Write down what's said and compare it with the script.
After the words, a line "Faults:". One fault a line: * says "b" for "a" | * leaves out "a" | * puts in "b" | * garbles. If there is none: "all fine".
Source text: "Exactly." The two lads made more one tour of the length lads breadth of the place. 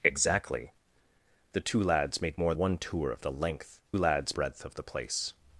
"Exactly." The two lads made more one tour of the length lads breadth of the place.
Faults:
all fine